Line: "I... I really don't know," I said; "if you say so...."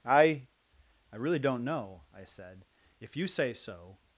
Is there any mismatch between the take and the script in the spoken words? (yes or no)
no